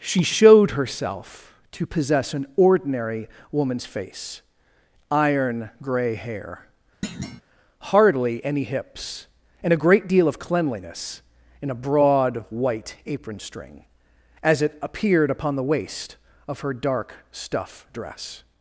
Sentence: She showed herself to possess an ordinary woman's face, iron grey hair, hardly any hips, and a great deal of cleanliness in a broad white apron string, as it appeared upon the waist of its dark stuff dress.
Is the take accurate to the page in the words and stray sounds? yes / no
no